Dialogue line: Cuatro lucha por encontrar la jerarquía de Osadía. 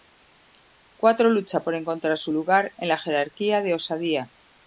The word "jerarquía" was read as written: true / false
true